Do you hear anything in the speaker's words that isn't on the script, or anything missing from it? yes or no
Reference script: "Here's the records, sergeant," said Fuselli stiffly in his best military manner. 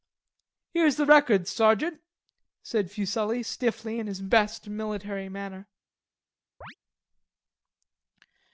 no